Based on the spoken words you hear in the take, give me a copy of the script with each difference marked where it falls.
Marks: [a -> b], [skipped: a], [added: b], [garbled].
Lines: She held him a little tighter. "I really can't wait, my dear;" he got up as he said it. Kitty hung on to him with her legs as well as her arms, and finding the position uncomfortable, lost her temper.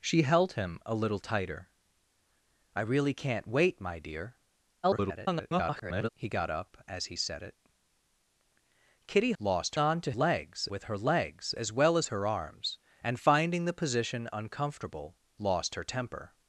She held him a little tighter. "I really can't wait, my dear;" [garbled] he got up as he said it. Kitty [hung -> lost] on to [him -> legs] with her legs as well as her arms, and finding the position uncomfortable, lost her temper.